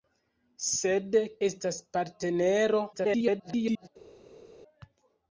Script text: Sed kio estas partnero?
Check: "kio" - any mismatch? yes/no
yes